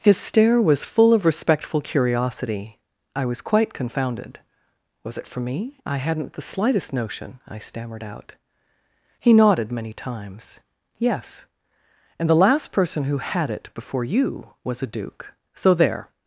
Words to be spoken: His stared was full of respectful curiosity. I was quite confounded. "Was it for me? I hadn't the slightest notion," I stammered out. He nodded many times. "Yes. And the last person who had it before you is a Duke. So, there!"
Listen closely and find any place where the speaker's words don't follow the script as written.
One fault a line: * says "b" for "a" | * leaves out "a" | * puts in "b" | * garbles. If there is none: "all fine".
* says "stare" for "stared"
* says "was" for "is"